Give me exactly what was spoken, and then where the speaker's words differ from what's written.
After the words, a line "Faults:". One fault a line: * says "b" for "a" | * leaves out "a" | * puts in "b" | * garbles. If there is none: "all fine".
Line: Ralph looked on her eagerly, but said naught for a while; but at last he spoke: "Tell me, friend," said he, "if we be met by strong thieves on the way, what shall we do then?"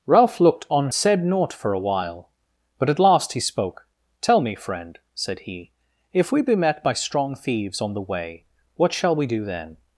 Ralph looked on said naught for a while; but at last he spoke: "Tell me, friend," said he, "if we be met by strong thieves on the way, what shall we do then?"
Faults:
* leaves out "her eagerly but"